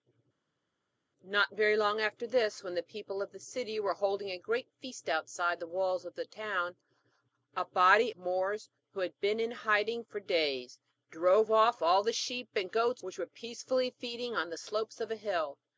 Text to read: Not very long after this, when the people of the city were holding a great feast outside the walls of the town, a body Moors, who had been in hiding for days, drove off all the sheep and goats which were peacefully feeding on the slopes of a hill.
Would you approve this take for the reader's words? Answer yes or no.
yes